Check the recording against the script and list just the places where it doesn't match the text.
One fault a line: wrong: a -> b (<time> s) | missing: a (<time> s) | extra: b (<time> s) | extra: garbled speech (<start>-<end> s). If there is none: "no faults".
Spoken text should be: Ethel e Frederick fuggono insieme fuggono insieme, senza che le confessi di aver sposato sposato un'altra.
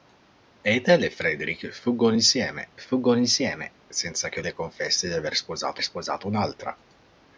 no faults